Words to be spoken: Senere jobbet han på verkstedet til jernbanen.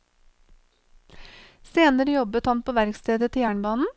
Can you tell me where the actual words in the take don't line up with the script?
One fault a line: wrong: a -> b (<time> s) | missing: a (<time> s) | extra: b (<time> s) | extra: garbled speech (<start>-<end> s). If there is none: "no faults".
no faults